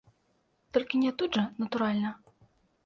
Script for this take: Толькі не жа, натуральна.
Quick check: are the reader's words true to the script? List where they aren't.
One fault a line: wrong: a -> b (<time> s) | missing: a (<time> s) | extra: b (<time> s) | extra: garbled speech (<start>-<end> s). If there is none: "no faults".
extra: тут (1.2 s)